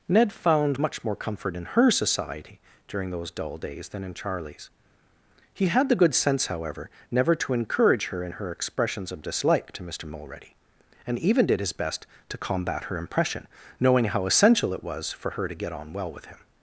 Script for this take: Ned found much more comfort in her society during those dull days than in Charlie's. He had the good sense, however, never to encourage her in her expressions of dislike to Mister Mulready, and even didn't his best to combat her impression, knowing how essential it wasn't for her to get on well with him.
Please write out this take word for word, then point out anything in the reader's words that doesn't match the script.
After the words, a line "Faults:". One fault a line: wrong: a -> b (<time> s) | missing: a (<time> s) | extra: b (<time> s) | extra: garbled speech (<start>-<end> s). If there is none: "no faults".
Ned found much more comfort in her society during those dull days than in Charlie's. He had the good sense, however, never to encourage her in her expressions of dislike to Mister Mulready, and even did his best to combat her impression, knowing how essential it was for her to get on well with him.
Faults:
wrong: didn't -> did (11.5 s)
wrong: wasn't -> was (14.8 s)